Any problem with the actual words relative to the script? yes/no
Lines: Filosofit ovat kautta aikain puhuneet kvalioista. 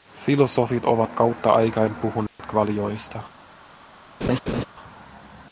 no